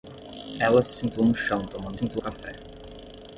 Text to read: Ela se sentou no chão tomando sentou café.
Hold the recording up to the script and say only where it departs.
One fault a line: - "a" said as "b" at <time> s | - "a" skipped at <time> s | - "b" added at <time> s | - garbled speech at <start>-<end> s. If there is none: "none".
none